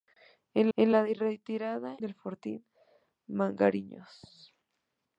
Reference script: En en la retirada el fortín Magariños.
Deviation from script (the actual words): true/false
false